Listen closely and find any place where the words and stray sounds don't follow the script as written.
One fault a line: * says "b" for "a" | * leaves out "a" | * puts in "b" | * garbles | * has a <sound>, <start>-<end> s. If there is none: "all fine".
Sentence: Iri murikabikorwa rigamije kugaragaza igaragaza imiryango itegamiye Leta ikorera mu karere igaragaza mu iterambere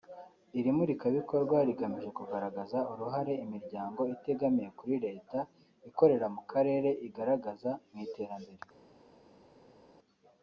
* says "uruhare" for "igaragaza"
* puts in "kuri"